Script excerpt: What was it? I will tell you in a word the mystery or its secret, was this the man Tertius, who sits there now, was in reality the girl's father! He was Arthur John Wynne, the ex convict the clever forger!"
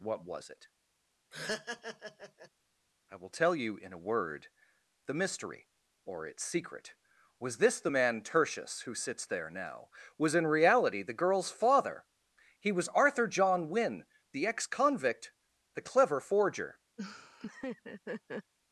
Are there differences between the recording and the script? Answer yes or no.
no